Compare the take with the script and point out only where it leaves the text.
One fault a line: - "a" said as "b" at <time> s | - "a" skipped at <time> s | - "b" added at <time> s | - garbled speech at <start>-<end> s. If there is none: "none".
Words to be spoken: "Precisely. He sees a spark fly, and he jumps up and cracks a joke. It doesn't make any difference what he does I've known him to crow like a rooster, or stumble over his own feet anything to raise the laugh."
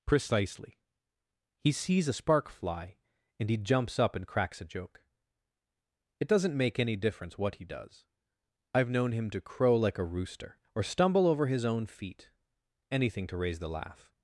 none